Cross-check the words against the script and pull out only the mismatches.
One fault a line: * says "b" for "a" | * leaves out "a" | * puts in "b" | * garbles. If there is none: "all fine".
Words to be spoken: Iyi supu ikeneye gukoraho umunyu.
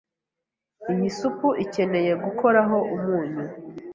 all fine